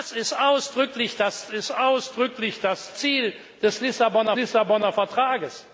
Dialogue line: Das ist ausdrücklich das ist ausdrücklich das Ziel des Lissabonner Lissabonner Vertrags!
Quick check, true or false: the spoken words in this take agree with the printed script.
true